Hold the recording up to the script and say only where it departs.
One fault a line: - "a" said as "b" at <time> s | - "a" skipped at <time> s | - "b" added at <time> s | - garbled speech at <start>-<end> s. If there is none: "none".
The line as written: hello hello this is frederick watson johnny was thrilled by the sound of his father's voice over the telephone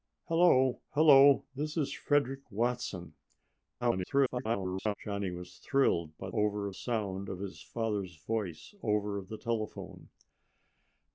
- garbled speech at 3.8-4.9 s
- "the" said as "over" at 6.3 s